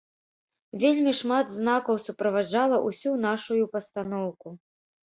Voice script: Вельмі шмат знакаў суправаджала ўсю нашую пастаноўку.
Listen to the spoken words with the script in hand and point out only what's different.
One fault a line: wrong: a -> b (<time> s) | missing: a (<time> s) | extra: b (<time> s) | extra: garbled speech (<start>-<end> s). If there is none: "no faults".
no faults